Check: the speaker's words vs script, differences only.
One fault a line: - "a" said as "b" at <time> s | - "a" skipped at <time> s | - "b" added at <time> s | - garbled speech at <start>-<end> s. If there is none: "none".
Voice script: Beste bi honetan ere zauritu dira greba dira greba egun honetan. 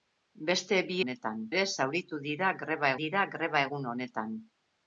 none